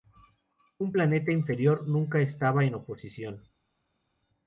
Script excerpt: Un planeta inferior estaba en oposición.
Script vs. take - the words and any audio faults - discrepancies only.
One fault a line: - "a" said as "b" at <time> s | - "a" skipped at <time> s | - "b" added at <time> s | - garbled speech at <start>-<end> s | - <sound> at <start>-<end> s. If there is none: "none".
- "nunca" added at 1.9 s